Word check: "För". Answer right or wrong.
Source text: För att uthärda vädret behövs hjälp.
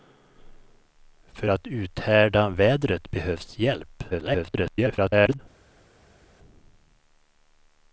right